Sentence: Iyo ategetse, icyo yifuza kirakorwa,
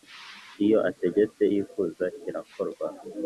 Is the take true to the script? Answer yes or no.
no